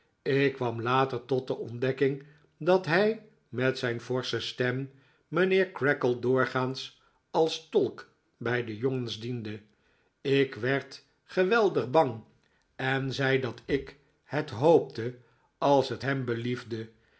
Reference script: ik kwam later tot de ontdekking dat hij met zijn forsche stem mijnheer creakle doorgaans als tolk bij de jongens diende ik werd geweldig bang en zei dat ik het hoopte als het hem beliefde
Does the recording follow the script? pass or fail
pass